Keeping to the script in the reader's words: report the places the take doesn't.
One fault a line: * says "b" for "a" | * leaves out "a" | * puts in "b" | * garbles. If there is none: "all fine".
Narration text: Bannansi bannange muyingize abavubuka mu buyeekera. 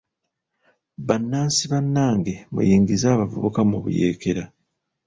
all fine